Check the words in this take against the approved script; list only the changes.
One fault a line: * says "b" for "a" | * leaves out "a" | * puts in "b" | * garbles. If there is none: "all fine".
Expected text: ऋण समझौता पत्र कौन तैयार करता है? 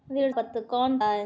* leaves out "समझौता"
* leaves out "तैयार करता"